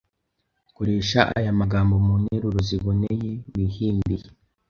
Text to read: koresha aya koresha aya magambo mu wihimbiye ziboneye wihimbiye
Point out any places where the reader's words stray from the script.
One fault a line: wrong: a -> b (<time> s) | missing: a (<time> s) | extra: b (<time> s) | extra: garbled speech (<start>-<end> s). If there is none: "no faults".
missing: koresha aya (1.5 s)
wrong: wihimbiye -> nteruro (2.2 s)